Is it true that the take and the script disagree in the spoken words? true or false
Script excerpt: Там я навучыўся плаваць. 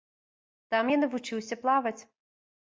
false